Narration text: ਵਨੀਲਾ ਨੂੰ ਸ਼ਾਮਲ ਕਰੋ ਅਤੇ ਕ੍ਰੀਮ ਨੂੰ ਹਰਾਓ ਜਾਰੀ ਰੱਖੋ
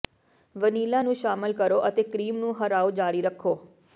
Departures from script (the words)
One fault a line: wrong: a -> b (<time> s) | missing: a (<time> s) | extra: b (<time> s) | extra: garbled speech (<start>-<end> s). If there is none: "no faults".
no faults